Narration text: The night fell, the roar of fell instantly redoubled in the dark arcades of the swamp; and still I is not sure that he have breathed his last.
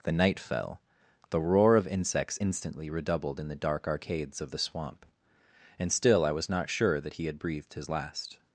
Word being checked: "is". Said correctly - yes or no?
no